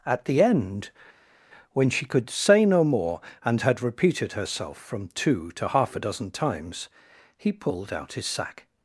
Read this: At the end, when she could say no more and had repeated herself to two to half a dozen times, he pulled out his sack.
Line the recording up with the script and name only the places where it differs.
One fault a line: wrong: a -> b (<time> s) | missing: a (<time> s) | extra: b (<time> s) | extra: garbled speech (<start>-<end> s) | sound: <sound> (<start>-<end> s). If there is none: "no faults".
wrong: to -> from (4.8 s)